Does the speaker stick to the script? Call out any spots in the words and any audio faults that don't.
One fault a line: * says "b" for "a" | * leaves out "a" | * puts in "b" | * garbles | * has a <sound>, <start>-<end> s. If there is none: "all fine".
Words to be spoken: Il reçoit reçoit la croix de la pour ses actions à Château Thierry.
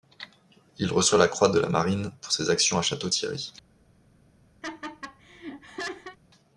* leaves out "reçoit"
* puts in "marine"
* has a laugh, 4.6-6.2 s